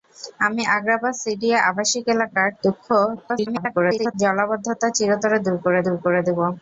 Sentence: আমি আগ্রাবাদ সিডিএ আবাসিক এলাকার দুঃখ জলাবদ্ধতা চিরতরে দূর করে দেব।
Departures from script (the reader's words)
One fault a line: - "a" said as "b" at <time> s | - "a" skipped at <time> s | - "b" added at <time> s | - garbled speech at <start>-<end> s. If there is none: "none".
- garbled speech at 3.2-4.1 s
- "দূর করে" added at 5.8 s